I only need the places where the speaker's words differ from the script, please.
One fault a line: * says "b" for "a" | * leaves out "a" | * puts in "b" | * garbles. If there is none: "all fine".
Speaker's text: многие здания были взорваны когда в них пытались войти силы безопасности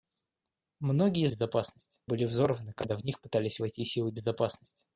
* says "безопасности" for "здания"